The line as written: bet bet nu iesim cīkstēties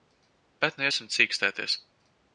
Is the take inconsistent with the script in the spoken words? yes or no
yes